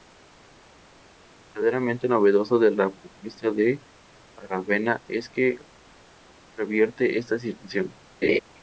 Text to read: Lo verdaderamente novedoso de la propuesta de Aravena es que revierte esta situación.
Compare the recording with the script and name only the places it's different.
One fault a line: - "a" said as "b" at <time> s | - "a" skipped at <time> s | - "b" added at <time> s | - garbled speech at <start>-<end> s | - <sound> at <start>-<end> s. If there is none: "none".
- laugh at 8.2-8.4 s